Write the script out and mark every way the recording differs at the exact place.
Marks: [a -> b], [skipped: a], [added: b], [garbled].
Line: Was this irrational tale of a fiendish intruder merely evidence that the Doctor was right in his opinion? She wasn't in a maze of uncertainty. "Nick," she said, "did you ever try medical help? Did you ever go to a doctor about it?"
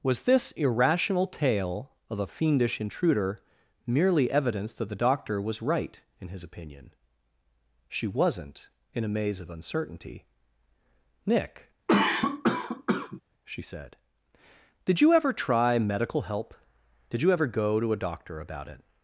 Was this irrational tale of a fiendish intruder merely evidence that the Doctor was right in his opinion? She wasn't in a maze of uncertainty. "Nick," she said, "did you ever try medical help? Did you ever go to a doctor about it?"